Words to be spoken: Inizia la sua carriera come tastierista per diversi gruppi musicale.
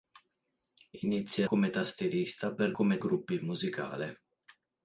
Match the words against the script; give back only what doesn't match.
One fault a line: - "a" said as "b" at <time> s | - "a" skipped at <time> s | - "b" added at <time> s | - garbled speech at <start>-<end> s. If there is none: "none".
- "la sua carriera" skipped at 1.5 s
- "diversi" said as "come" at 2.7 s